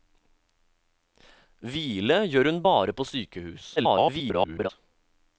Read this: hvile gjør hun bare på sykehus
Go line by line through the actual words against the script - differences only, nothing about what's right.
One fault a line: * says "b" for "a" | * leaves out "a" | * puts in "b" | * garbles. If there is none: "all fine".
* garbles